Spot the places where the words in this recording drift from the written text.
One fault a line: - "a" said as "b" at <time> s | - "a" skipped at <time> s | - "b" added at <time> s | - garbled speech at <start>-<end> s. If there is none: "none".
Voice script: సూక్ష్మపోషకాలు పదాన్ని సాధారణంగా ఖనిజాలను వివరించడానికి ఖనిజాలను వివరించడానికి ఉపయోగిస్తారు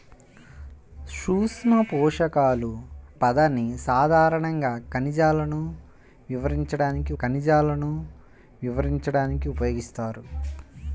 none